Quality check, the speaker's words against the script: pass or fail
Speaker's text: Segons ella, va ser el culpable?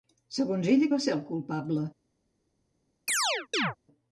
pass